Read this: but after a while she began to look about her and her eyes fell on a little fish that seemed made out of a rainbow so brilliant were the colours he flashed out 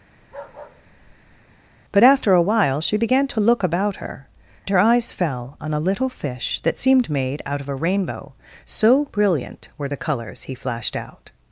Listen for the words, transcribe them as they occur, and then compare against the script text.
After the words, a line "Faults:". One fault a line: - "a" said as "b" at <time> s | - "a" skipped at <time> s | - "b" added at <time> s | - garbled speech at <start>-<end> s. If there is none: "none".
but after a while she began to look about her her eyes fell on a little fish that seemed made out of a rainbow so brilliant were the colours he flashed out
Faults:
- "and" skipped at 4.3 s